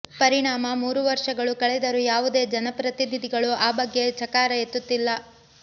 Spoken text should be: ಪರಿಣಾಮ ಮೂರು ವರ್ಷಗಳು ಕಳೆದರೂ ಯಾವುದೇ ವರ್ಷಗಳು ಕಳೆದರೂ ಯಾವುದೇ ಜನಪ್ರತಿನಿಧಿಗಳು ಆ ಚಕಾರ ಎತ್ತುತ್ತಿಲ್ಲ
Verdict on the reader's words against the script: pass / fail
fail